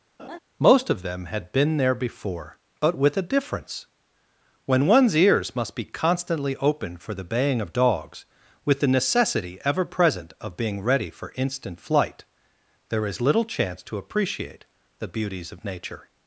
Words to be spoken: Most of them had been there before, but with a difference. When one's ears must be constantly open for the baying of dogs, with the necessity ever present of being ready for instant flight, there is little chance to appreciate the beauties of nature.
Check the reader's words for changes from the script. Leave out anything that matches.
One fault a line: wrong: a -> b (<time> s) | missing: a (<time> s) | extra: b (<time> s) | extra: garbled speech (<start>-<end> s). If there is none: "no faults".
no faults